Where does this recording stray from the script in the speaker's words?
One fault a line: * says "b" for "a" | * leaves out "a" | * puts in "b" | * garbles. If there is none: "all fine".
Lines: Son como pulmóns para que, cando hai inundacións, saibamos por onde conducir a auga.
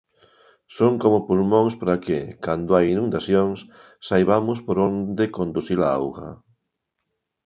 all fine